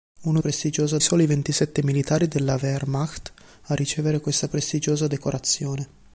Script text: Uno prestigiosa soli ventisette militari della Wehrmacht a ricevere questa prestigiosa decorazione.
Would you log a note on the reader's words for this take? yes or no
no